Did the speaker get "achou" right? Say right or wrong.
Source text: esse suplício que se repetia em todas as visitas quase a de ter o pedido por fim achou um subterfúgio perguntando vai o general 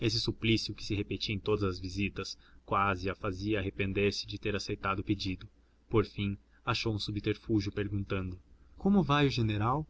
right